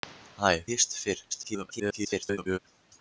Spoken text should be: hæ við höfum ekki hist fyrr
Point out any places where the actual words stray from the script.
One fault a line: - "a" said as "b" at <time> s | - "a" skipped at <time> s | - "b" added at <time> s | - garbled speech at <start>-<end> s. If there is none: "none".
- "við höfum ekki" skipped at 0.5 s
- garbled speech at 1.3-2.6 s